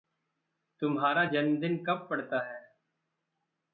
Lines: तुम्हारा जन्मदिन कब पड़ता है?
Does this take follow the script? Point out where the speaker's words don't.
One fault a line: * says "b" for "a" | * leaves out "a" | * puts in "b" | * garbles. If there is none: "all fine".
all fine